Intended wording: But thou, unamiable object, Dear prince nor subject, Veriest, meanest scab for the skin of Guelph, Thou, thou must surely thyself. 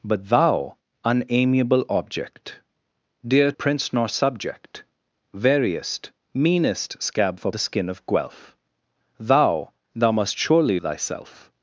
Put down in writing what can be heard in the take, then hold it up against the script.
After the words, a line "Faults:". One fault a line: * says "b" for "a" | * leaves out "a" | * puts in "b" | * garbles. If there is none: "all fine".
But thou, unamiable object, Dear prince nor subject, Veriest, meanest scab for the skin of Guelph, Thou, thou must surely thyself.
Faults:
all fine